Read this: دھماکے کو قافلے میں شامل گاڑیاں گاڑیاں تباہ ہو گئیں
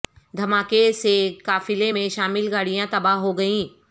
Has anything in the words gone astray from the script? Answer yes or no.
yes